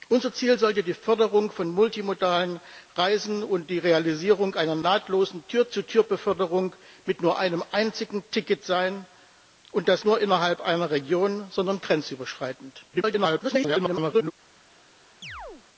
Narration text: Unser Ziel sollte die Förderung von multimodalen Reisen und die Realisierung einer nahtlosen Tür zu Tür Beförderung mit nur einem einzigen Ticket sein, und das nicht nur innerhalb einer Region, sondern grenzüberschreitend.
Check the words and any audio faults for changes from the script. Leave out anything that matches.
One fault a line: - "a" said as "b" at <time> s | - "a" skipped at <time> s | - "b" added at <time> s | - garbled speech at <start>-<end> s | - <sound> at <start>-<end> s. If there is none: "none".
- "nicht" skipped at 10.0 s
- garbled speech at 12.9-14.3 s
- chirp at 15.2-15.6 s